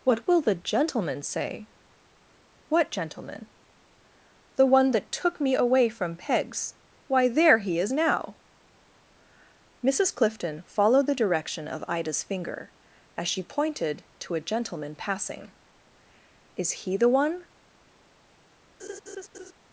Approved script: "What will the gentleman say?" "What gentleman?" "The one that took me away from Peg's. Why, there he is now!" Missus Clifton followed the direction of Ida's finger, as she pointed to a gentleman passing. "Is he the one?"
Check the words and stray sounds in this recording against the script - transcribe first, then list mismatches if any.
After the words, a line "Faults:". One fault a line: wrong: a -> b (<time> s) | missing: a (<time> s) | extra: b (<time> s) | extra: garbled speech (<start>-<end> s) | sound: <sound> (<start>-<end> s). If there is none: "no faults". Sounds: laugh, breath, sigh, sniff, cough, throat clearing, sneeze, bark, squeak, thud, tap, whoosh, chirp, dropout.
"What will the gentleman say?" "What gentleman?" "The one that took me away from Peg's. Why, there he is now!" Missus Clifton followed the direction of Ida's finger, as she pointed to a gentleman passing. "Is he the one?"
Faults:
sound: laugh (18.8-19.5 s)